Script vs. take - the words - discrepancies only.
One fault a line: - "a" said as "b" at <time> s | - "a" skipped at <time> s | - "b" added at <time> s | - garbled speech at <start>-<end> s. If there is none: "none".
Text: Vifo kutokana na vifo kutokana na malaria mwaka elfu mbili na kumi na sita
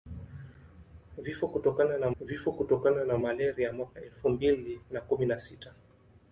none